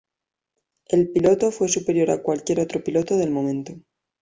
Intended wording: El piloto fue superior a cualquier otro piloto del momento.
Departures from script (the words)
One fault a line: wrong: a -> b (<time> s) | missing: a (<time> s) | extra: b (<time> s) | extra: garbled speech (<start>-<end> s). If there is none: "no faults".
no faults